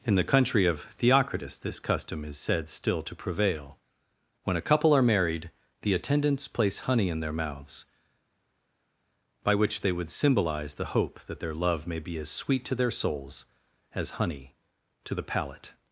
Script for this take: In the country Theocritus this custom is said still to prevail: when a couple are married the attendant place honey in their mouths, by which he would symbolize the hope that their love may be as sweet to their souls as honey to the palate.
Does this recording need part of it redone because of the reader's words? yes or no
yes